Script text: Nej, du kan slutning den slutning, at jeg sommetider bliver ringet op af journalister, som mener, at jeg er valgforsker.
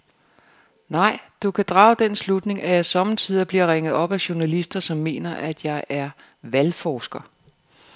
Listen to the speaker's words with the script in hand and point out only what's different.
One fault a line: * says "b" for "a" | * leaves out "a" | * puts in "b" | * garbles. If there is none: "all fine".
* says "drage" for "slutning"